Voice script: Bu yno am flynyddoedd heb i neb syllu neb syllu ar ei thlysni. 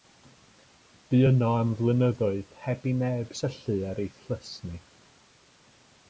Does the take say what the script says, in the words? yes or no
no